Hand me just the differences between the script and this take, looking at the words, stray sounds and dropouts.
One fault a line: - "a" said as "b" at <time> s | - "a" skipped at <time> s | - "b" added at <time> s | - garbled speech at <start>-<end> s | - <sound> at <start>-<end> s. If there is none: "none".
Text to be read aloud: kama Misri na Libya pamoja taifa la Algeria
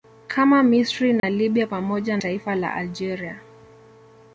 - dropout at 1.2-1.2 s